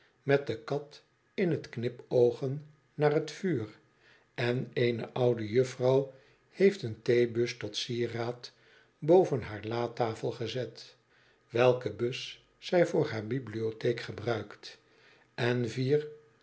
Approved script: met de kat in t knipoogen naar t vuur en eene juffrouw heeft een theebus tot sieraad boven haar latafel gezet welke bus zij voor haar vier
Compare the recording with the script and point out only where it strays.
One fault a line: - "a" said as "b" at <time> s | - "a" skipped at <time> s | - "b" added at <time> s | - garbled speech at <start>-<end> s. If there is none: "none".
- "oude" added at 5.1 s
- "bibliotheek gebruikt en" added at 13.3 s